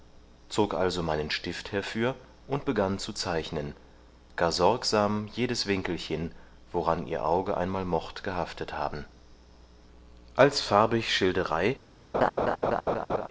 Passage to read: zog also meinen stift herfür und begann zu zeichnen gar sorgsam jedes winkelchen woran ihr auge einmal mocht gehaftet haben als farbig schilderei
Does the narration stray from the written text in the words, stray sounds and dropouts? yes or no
yes